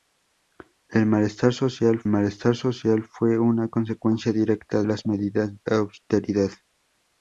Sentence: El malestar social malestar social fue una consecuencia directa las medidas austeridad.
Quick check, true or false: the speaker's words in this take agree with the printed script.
true